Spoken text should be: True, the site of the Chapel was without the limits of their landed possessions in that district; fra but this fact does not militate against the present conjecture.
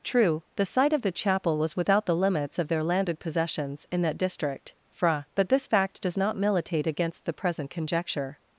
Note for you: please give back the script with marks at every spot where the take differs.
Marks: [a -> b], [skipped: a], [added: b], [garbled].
True, the site of the Chapel was without the limits of their landed possessions in that district; fra but this fact does not militate against the present conjecture.